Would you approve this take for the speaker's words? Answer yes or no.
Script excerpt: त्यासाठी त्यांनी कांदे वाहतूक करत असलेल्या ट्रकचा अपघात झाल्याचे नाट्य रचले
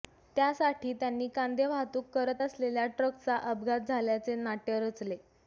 yes